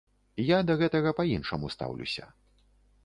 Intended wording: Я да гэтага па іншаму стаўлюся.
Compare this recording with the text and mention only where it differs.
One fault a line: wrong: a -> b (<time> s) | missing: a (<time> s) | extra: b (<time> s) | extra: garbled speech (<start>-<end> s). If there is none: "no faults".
no faults